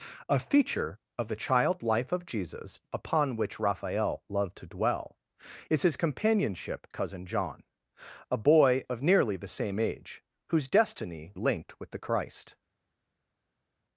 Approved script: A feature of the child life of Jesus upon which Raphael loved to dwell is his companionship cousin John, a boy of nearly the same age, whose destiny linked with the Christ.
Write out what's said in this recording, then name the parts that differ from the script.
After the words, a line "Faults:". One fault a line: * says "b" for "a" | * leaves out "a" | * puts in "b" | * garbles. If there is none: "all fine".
A feature of the child life of Jesus upon which Raphael loved to dwell is his companionship cousin John, a boy of nearly the same age, whose destiny linked with the Christ.
Faults:
all fine